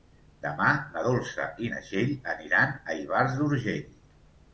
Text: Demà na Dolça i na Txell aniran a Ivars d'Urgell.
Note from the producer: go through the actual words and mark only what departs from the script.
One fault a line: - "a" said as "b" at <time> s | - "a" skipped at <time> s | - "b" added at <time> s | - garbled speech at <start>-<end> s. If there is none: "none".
none